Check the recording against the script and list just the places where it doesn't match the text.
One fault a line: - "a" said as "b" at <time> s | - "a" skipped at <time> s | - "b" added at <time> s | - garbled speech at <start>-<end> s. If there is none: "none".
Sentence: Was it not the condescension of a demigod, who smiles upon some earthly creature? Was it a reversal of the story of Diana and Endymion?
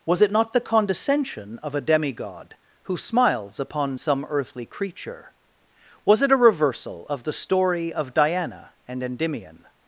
none